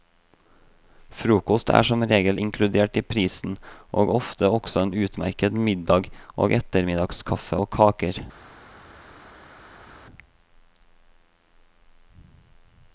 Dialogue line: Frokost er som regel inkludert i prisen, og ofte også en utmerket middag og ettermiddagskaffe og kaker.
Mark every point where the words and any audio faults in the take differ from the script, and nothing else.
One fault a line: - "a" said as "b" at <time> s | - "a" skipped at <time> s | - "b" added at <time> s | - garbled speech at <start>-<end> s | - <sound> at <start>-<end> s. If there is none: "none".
none